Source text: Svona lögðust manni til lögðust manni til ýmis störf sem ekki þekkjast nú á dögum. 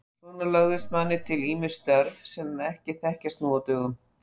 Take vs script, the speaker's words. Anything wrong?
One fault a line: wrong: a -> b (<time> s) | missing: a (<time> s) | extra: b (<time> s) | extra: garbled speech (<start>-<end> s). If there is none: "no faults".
missing: lögðust manni til (1.4 s)